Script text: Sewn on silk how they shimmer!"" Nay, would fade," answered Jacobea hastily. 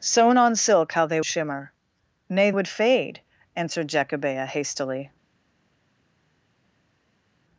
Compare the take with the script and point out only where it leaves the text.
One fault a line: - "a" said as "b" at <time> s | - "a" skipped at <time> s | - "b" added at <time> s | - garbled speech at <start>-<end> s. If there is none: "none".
none